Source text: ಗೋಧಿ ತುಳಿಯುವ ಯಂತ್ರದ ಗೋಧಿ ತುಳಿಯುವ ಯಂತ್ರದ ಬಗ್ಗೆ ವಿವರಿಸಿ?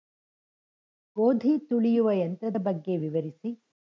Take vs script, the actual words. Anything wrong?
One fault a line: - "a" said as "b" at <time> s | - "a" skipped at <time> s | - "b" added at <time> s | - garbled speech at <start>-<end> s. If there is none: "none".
- "ಗೋಧಿ ತುಳಿಯುವ ಯಂತ್ರದ" skipped at 2.6 s